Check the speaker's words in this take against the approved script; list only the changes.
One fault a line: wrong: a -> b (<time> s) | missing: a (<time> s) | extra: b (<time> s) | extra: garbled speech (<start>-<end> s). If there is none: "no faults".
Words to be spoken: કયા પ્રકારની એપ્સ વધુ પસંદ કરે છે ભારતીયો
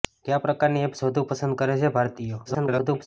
extra: garbled speech (2.4-3.1 s)